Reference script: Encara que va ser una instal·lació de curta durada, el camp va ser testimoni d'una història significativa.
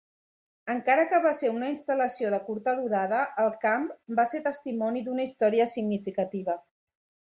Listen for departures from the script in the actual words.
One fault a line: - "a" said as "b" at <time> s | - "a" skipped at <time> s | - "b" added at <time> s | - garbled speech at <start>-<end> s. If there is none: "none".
none